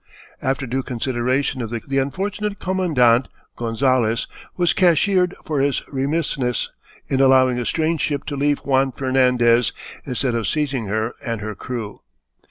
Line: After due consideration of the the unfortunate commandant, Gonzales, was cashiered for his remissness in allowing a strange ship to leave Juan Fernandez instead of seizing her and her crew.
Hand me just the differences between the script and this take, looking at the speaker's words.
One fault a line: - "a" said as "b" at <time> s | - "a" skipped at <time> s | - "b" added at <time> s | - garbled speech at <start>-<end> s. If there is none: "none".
none